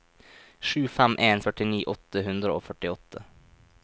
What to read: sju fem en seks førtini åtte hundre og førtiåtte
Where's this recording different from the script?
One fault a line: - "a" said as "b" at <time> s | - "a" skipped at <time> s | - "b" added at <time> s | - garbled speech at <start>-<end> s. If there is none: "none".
- "seks" skipped at 1.4 s